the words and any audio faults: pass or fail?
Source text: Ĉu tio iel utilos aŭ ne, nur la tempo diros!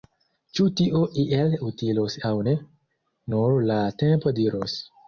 pass